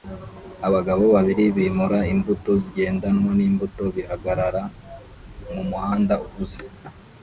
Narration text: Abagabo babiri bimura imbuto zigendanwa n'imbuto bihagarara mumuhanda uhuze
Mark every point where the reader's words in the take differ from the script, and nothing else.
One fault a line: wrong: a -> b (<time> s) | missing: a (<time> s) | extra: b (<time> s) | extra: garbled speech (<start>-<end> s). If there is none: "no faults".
no faults